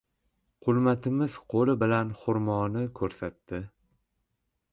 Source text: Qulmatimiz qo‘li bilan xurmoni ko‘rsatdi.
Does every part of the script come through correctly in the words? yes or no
yes